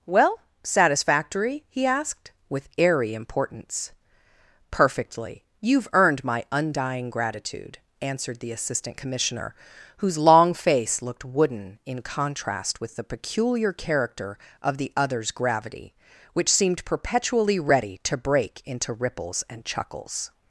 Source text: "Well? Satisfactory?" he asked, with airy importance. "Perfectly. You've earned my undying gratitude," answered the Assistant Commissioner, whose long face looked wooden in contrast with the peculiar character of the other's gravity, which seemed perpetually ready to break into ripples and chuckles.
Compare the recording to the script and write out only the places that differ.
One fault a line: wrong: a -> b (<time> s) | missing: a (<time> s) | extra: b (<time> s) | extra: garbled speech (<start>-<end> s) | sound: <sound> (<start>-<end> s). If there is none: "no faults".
no faults